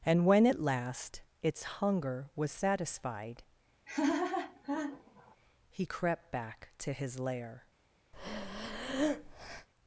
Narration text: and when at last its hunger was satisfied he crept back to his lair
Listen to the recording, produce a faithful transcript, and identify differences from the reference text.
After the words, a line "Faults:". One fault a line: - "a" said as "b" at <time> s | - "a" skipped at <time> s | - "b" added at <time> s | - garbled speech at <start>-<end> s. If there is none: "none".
and when at last its hunger was satisfied he crept back to his lair
Faults:
none